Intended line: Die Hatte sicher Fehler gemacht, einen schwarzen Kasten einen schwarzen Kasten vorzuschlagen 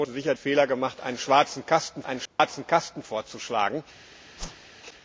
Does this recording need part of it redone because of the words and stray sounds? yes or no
yes